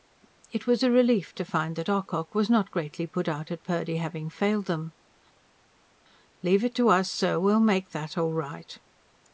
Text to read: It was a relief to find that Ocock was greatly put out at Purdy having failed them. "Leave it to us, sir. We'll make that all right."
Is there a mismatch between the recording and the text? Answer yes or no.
yes